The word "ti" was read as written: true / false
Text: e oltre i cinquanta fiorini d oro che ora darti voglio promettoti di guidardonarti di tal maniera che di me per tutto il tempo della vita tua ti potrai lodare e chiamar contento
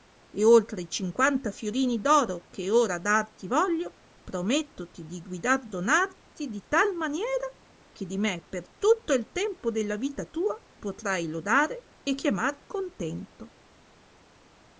false